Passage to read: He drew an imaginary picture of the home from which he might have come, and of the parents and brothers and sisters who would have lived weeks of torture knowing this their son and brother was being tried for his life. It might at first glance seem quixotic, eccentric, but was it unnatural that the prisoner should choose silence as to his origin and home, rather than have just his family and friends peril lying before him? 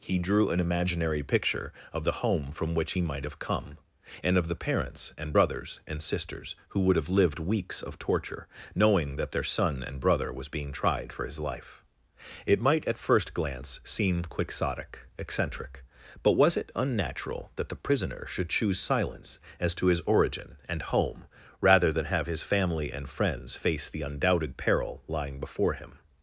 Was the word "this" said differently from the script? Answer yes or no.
yes